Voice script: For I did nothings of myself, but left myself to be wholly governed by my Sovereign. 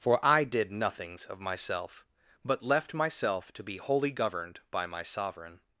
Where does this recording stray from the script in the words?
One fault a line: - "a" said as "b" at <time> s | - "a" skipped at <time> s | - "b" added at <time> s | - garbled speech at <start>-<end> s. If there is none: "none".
none